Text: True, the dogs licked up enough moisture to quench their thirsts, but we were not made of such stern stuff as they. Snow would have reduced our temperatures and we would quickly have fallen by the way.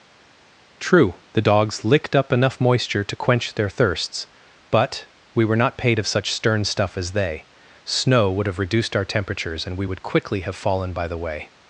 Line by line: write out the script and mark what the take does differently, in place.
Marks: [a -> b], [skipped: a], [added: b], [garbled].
True, the dogs licked up enough moisture to quench their thirsts, but we were not [made -> paid] of such stern stuff as they. Snow would have reduced our temperatures and we would quickly have fallen by the way.